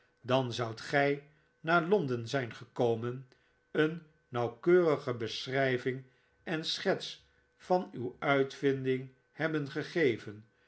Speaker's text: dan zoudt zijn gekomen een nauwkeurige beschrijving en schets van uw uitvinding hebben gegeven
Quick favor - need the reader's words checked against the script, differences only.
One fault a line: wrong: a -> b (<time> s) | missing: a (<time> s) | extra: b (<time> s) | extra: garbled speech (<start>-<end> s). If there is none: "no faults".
extra: gij naar londen (0.8 s)